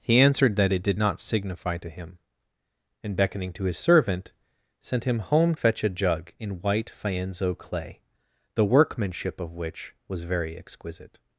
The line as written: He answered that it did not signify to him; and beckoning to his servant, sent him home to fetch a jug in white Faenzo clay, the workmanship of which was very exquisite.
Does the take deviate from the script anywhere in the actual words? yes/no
yes